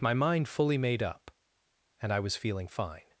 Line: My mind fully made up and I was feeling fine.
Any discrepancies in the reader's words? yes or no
no